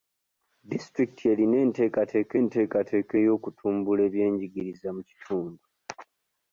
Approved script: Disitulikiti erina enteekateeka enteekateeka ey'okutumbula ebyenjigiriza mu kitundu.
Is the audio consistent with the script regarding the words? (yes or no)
yes